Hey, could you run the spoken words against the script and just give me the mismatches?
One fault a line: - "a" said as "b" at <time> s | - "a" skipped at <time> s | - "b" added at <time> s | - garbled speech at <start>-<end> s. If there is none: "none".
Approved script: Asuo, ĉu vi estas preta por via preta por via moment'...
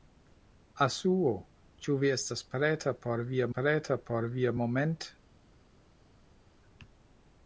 none